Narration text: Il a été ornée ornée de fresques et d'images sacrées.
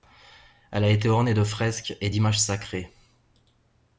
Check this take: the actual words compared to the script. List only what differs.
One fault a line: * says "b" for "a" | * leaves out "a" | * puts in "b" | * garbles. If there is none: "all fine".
* says "Elle" for "Il"
* leaves out "ornée"